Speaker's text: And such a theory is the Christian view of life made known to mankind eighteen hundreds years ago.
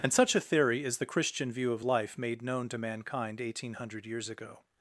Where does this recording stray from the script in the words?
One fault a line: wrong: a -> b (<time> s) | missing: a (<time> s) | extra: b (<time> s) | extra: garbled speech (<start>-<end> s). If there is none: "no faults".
wrong: hundreds -> hundred (3.7 s)